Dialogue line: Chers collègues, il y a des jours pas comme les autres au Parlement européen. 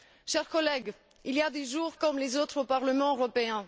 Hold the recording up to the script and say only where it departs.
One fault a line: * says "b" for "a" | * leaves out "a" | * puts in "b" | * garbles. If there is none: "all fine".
* leaves out "pas"